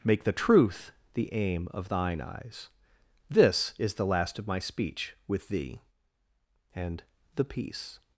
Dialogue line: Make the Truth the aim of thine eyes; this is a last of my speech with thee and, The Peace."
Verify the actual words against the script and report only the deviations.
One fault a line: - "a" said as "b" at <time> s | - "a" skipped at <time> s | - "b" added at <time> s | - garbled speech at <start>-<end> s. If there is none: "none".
- "a" said as "the" at 3.9 s